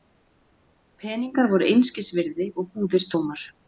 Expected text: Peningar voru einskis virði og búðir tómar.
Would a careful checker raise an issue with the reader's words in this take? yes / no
no